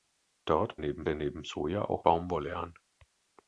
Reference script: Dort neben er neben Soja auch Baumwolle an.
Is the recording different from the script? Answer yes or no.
no